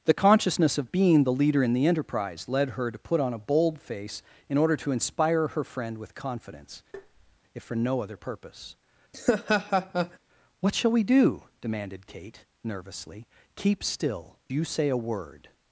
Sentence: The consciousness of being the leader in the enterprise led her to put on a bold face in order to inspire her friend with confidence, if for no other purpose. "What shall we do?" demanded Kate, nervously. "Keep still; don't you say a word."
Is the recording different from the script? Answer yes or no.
yes